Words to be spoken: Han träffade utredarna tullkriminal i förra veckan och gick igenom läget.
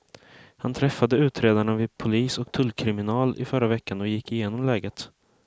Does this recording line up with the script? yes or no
no